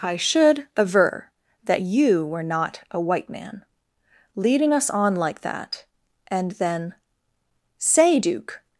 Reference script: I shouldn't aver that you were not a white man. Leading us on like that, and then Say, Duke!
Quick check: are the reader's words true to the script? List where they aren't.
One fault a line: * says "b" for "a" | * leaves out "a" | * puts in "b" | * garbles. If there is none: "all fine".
* says "should" for "shouldn't"